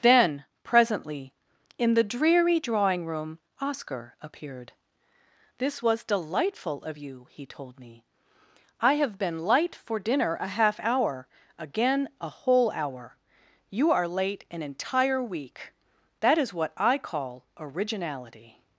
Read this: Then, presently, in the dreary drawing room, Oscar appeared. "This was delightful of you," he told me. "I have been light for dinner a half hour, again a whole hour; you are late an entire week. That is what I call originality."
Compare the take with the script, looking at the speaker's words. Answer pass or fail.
pass